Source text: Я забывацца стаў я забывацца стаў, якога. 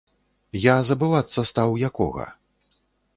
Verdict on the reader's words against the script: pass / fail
fail